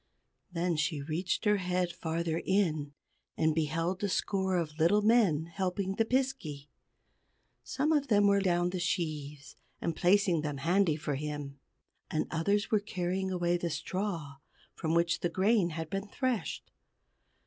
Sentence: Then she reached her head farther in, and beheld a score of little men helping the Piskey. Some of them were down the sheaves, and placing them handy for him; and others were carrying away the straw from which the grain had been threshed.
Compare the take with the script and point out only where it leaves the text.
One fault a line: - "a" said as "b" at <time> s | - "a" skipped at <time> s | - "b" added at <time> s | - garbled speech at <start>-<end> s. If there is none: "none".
none